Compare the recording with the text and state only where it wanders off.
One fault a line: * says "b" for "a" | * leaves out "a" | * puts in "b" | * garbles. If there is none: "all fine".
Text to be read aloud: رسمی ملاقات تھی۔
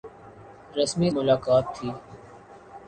all fine